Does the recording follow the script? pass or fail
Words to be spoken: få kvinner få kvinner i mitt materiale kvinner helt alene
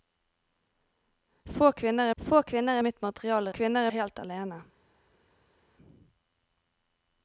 pass